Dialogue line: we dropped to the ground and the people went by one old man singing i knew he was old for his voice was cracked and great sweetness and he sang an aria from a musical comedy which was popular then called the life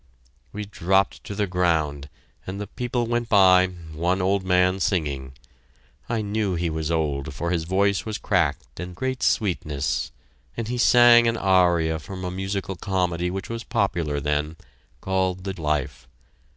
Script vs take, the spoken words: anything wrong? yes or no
no